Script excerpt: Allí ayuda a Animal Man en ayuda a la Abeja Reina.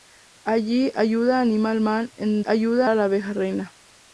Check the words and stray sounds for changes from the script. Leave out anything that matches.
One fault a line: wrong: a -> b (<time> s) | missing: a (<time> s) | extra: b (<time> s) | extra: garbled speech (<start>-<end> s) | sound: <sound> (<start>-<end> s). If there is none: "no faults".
no faults